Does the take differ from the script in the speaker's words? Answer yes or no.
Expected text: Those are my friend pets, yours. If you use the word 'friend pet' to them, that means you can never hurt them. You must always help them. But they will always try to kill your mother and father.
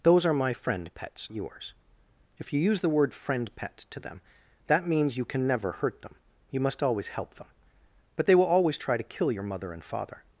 no